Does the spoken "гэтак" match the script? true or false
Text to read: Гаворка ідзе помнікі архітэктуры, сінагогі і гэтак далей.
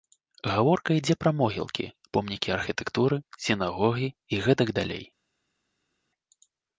true